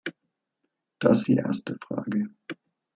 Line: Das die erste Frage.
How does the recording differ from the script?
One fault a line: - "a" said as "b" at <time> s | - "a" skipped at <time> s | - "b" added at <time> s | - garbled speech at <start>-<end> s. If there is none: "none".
none